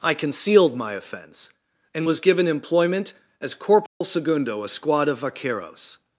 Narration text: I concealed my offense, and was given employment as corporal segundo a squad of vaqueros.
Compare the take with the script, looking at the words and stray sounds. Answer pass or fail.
fail